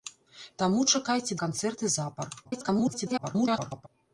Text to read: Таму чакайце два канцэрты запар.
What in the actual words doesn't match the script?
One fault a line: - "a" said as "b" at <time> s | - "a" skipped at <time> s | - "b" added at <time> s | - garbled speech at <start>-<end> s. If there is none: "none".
- "два" skipped at 1.4 s
- garbled speech at 2.4-3.9 s